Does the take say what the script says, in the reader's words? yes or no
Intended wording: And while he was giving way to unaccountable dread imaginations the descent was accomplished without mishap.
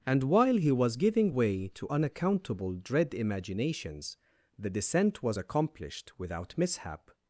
yes